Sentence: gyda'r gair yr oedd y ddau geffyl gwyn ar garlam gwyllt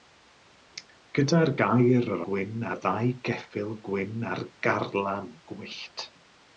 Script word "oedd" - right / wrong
wrong